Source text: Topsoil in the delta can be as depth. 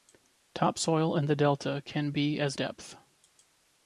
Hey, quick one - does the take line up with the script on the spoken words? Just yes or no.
yes